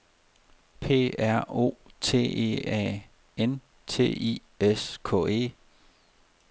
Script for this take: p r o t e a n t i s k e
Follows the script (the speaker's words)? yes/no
yes